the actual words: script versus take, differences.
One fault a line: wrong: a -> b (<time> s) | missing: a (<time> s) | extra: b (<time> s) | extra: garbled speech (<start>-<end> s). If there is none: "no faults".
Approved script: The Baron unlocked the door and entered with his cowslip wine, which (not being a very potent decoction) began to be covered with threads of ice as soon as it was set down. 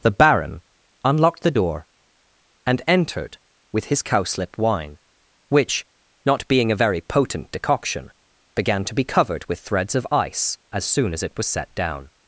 no faults